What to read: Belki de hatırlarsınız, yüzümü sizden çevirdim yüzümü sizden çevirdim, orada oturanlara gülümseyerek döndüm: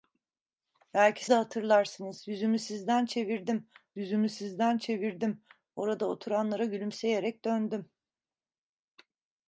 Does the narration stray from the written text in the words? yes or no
no